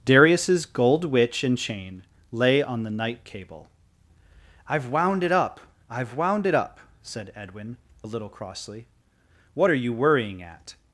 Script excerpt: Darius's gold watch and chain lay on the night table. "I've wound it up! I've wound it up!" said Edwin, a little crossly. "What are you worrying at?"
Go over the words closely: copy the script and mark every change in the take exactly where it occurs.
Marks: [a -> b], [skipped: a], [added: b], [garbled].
Darius's gold [watch -> witch] and chain lay on the night [table. -> cable] "I've wound it up! I've wound it up!" said Edwin, a little crossly. "What are you worrying at?"